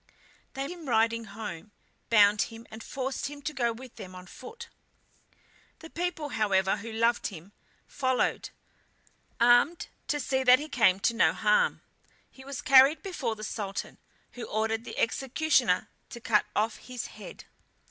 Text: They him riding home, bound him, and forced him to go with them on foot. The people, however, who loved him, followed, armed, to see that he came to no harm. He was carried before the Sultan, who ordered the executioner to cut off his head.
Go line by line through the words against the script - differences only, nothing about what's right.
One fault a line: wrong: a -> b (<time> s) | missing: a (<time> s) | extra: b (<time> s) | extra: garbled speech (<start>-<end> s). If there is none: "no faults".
no faults